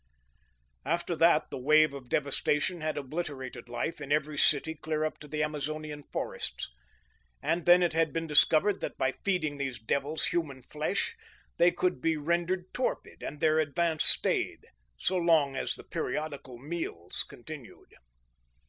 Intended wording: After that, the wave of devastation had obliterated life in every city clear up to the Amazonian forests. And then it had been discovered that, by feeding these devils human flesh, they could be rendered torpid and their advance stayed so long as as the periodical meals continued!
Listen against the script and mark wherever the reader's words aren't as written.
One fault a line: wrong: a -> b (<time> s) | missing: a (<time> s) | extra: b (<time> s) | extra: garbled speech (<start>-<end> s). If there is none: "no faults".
missing: as (15.7 s)